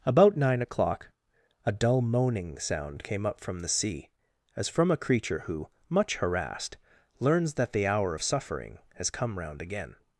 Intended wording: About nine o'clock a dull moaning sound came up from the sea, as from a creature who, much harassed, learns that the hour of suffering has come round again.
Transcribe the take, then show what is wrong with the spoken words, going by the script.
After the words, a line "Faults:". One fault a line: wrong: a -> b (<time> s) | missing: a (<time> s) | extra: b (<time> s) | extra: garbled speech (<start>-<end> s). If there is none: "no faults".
About nine o'clock a dull moaning sound came up from the sea, as from a creature who, much harassed, learns that the hour of suffering has come round again.
Faults:
no faults